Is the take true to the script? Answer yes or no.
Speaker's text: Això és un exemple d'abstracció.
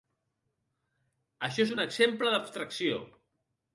yes